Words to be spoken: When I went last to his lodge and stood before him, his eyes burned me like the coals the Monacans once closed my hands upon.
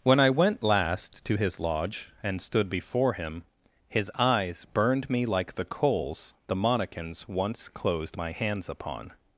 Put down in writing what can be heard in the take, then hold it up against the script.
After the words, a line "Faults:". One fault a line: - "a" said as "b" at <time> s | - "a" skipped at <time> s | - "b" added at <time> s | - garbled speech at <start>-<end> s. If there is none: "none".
When I went last to his lodge and stood before him, his eyes burned me like the coals the Monacans once closed my hands upon.
Faults:
none